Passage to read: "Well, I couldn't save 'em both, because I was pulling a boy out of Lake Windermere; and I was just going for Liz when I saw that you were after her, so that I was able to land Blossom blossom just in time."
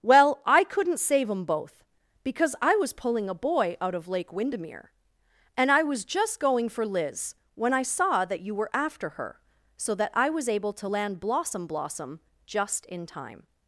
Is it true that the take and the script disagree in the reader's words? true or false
false